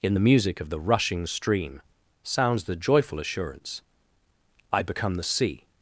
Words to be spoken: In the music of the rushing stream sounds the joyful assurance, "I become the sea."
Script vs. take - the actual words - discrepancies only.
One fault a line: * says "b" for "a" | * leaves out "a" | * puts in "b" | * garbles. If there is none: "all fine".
all fine